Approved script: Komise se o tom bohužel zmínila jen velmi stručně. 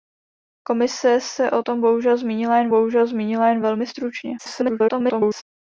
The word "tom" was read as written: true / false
true